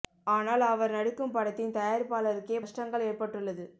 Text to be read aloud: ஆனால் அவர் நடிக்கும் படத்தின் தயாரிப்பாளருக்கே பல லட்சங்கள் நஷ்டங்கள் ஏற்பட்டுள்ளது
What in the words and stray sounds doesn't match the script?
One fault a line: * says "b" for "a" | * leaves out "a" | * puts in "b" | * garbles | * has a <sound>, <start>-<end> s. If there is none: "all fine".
* leaves out "பல லட்சங்கள்"